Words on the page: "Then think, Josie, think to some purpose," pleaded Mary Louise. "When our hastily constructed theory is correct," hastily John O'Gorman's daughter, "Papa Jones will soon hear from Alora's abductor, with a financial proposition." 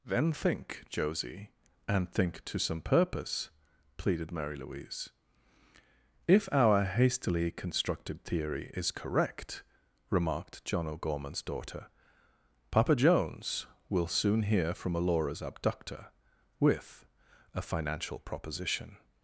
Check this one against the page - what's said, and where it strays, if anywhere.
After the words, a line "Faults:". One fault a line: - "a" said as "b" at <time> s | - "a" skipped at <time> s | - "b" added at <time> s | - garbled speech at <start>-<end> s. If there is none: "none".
"Then think, Josie, and think to some purpose," pleaded Mary Louise. "If our hastily constructed theory is correct," remarked John O'Gorman's daughter, "Papa Jones will soon hear from Alora's abductor, with a financial proposition."
Faults:
- "and" added at 1.9 s
- "When" said as "If" at 6.3 s
- "hastily" said as "remarked" at 10.1 s